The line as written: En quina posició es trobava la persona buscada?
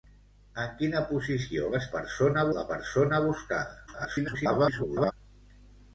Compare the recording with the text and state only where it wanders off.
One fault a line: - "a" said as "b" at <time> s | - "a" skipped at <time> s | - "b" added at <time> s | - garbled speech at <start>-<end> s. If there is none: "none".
- "trobava" said as "persona" at 2.0 s
- garbled speech at 3.9-5.1 s